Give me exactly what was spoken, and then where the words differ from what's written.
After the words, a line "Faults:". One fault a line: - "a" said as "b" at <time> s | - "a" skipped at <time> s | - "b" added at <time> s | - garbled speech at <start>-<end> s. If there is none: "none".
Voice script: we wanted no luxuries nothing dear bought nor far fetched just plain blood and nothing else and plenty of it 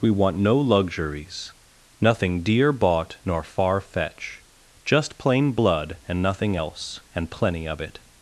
we want no luxuries nothing dear bought nor far fetch just plain blood and nothing else and plenty of it
Faults:
- "wanted" said as "want" at 0.1 s
- "fetched" said as "fetch" at 3.8 s